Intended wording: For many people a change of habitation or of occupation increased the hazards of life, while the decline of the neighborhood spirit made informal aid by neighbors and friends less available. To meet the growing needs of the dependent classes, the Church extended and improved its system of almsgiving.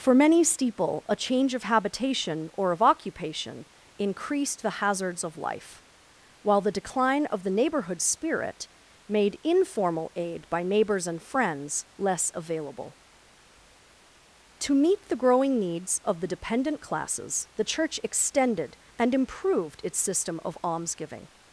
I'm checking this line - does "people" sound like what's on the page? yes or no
no